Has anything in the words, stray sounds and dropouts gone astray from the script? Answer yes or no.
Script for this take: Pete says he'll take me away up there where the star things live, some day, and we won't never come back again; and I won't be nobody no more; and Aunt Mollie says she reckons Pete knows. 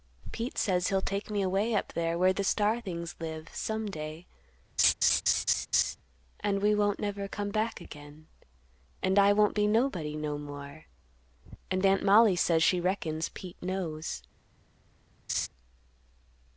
yes